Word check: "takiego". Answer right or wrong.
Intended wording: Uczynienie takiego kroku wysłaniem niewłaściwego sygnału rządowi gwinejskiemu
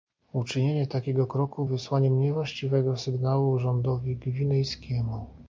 right